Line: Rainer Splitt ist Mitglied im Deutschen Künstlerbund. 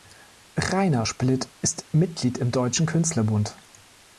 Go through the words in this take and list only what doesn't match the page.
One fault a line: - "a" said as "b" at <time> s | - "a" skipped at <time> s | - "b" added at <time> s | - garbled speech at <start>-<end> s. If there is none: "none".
none